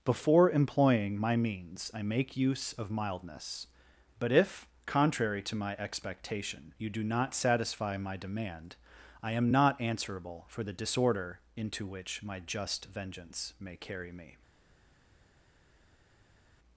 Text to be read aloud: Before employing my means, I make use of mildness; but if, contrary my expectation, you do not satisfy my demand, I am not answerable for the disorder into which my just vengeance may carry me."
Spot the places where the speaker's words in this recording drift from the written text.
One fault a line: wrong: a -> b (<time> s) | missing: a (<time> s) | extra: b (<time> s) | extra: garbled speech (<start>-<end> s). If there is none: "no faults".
extra: to (5.4 s)